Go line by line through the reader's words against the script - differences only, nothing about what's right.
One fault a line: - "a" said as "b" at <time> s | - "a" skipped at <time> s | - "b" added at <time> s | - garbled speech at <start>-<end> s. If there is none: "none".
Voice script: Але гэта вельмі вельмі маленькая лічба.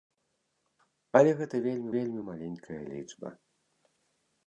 none